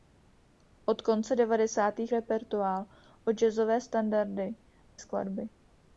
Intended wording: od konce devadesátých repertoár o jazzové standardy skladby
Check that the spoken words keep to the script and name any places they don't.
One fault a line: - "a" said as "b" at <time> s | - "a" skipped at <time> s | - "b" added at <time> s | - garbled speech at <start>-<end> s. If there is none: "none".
none